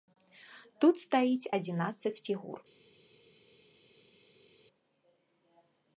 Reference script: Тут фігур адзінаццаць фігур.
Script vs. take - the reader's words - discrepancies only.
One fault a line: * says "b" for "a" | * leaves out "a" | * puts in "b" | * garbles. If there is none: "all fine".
* says "стаіць" for "фігур"